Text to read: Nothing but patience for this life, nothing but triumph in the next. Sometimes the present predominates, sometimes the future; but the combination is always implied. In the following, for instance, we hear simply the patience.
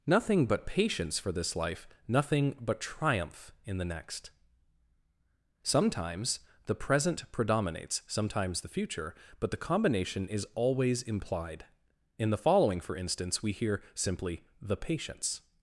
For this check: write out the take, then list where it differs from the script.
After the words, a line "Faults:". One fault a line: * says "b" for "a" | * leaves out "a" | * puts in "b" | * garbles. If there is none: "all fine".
Nothing but patience for this life, nothing but triumph in the next. Sometimes the present predominates, sometimes the future; but the combination is always implied. In the following, for instance, we hear simply the patience.
Faults:
all fine